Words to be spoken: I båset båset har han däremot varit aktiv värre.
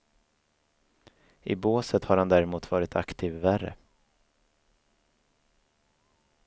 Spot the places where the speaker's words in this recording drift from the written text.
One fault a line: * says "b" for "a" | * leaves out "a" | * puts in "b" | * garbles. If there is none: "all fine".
* leaves out "båset"